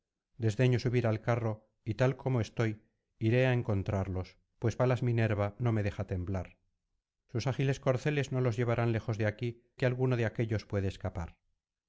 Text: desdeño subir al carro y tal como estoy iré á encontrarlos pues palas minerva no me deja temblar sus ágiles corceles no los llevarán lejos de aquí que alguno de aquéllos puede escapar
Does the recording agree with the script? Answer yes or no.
yes